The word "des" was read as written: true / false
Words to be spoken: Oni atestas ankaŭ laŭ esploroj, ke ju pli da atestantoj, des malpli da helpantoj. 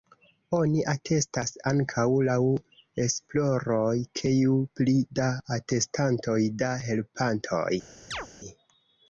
false